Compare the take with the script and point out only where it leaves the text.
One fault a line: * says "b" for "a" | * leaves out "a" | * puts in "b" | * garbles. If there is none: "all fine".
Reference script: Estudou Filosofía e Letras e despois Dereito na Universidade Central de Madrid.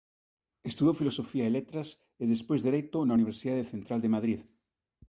all fine